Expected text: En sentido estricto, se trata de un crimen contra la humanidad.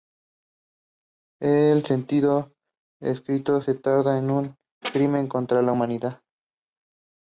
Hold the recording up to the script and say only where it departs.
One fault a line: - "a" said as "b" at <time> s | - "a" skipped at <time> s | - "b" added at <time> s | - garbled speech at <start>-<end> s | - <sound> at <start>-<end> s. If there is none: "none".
none